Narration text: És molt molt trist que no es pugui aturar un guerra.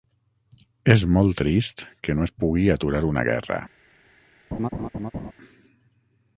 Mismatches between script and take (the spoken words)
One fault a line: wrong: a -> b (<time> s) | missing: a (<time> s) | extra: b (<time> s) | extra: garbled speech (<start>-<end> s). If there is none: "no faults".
missing: molt (1.4 s)
wrong: un -> una (3.1 s)